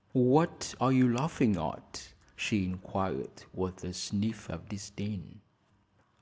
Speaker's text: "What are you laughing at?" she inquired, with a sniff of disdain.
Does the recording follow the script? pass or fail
pass